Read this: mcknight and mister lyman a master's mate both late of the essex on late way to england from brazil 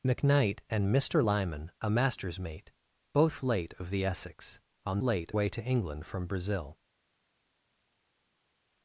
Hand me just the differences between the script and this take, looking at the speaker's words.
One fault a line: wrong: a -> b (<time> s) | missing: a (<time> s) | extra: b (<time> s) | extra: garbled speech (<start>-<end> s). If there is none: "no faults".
no faults